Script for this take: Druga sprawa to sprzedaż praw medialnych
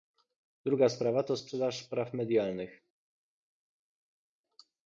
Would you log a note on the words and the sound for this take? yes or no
no